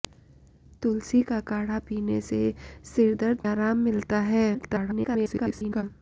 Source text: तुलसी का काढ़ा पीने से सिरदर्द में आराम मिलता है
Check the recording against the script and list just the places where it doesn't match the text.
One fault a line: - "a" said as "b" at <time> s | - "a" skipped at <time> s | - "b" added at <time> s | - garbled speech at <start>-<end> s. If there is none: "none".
- "में" skipped at 3.4 s
- garbled speech at 4.5-5.8 s